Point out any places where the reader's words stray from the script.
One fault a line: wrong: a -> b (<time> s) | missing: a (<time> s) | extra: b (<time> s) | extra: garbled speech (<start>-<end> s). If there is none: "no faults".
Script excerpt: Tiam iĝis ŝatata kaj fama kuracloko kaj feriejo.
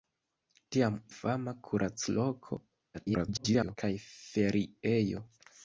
missing: iĝis ŝatata kaj (0.9 s)
extra: garbled speech (2.9-3.8 s)